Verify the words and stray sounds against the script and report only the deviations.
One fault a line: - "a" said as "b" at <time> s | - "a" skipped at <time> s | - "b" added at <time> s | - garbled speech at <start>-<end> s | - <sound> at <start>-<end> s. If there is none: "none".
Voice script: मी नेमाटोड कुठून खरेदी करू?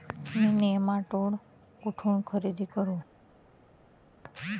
none